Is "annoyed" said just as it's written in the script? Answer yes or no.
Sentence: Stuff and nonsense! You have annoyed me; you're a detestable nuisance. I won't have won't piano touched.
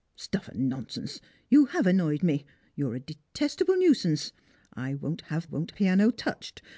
yes